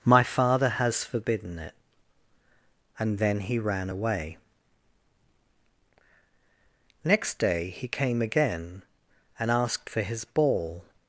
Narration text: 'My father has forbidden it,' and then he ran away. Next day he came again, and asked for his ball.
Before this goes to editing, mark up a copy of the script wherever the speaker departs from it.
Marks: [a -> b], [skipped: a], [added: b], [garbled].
'My father has forbidden it,' and then he ran away. Next day he came again, and asked for his ball.